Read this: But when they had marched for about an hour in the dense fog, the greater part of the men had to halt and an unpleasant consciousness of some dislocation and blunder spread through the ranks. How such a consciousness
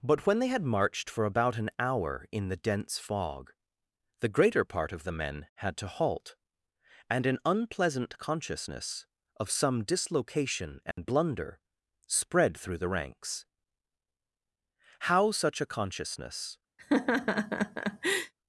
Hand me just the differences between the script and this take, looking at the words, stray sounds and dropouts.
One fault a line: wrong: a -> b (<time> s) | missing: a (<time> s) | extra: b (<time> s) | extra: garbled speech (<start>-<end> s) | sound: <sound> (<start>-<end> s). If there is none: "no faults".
sound: dropout (10.9-11.0 s)
sound: laugh (16.8-18.3 s)